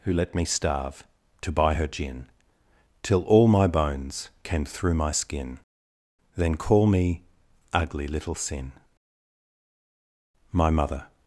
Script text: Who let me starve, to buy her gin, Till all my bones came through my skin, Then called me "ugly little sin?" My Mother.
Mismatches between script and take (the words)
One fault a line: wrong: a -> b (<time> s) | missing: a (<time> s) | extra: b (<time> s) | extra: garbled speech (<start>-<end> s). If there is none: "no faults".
wrong: called -> call (6.6 s)